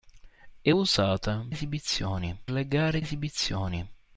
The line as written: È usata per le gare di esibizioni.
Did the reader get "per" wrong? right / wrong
wrong